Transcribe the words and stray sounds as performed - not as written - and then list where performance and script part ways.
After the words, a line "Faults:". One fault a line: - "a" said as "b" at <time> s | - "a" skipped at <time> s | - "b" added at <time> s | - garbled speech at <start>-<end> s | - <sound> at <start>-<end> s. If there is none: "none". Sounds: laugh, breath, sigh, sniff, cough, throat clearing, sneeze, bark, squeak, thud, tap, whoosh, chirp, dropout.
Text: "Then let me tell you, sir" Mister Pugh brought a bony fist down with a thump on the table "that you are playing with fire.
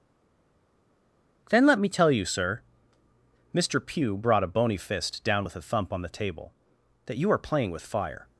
"Then let me tell you, sir" Mister Pugh brought a bony fist down with a thump on the table "that you are playing with fire.
Faults:
none